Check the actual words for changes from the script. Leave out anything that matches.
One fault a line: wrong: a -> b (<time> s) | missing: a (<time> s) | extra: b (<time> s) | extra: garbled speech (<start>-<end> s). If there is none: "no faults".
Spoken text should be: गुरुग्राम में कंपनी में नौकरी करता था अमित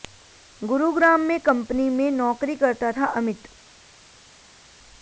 no faults